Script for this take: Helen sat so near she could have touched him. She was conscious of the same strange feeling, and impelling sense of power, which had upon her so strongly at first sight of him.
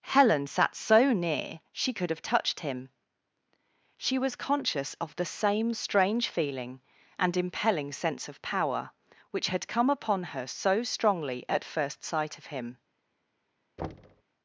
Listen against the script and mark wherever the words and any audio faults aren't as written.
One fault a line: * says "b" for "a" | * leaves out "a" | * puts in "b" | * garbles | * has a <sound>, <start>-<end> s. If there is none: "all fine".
* puts in "come"
* has a thud, 13.8-14.2 s